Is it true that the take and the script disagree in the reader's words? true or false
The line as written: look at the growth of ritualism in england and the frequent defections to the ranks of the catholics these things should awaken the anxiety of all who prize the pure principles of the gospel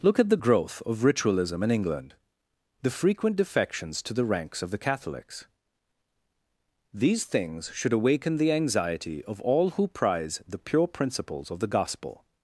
true